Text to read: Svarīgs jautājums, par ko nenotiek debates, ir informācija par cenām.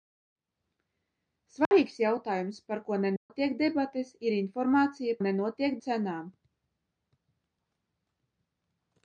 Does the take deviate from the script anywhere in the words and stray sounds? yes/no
yes